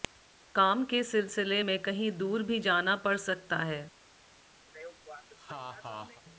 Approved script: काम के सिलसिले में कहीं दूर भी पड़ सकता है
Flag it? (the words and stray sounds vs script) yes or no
yes